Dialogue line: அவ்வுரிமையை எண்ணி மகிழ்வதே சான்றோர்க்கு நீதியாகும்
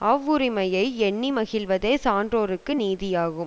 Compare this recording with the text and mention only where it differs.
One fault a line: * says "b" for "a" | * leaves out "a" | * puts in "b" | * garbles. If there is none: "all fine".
all fine